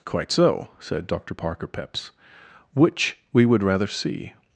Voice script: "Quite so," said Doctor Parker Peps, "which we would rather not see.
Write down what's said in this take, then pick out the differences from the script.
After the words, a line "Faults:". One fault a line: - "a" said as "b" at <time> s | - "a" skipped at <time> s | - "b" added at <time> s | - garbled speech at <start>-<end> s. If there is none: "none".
"Quite so," said Doctor Parker Peps, "which we would rather see.
Faults:
- "not" skipped at 3.9 s